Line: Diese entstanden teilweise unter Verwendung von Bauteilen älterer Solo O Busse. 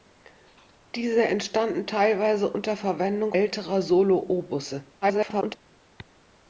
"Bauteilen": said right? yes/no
no